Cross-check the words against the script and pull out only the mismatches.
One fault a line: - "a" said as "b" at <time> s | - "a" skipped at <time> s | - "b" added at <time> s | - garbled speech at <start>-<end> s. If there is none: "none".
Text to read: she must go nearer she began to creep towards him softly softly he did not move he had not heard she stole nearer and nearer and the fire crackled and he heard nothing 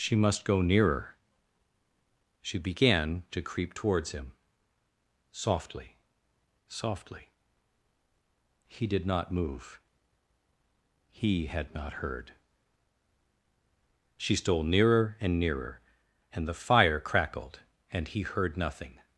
none